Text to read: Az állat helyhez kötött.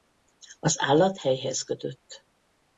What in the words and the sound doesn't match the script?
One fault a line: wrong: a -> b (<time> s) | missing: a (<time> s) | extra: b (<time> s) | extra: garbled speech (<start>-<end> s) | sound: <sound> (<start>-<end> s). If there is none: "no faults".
no faults